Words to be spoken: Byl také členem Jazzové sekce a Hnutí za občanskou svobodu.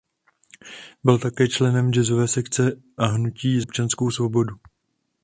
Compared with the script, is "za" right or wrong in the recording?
wrong